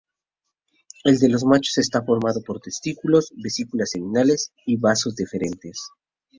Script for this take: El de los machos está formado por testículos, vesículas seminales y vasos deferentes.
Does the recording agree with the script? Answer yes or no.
yes